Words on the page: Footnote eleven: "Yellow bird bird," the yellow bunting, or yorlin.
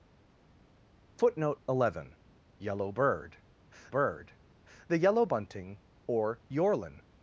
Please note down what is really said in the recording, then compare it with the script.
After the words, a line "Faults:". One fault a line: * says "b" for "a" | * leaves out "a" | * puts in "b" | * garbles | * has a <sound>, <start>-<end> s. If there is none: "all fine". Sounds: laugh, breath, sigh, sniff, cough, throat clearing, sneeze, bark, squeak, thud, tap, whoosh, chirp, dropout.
Footnote eleven: "Yellow bird bird," the yellow bunting, or yorlin.
Faults:
all fine